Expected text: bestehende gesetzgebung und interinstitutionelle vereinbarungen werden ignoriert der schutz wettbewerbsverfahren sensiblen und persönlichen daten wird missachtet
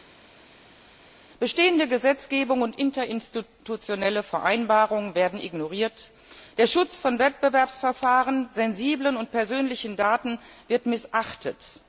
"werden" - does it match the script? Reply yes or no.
yes